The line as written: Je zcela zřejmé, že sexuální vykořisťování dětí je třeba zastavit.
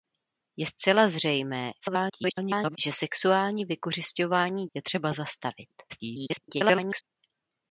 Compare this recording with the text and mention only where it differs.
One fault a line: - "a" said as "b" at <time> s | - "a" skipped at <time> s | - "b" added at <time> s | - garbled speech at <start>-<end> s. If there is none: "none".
- garbled speech at 1.8-2.8 s
- "dětí" skipped at 4.7 s
- garbled speech at 5.9-7.0 s